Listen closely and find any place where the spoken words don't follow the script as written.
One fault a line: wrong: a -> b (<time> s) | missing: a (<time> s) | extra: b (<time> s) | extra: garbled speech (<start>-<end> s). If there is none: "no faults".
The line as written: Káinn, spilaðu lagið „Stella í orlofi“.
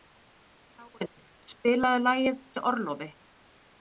missing: Stella (2.4 s)